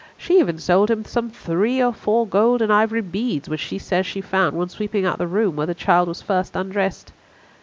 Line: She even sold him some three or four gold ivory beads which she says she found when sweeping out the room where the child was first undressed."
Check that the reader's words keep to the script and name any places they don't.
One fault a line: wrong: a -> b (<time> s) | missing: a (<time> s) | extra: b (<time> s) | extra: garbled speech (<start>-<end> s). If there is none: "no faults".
extra: and (2.6 s)